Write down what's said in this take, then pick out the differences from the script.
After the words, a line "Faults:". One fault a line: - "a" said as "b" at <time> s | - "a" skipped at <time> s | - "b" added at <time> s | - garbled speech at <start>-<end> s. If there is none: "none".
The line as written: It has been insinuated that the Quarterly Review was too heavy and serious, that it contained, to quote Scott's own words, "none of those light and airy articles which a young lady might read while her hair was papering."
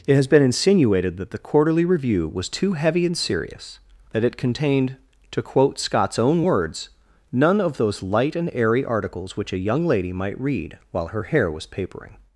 It has been insinuated that the Quarterly Review was too heavy and serious, that it contained, to quote Scott's own words, "none of those light and airy articles which a young lady might read while her hair was papering."
Faults:
none